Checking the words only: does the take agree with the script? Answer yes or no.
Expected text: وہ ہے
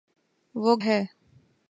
yes